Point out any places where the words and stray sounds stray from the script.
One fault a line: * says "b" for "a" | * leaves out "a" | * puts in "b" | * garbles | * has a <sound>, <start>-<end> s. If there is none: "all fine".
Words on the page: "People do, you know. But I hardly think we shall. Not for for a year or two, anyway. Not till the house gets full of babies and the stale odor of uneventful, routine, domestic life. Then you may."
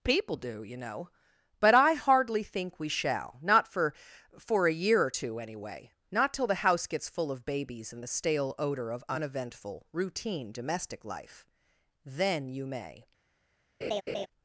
* has a laugh, 13.8-14.3 s